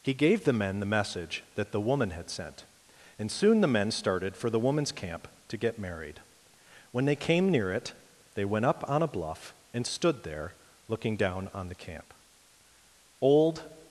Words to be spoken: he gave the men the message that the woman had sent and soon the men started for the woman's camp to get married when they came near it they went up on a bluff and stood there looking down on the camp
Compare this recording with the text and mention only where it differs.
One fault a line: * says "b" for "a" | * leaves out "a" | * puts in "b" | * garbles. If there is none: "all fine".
* puts in "old"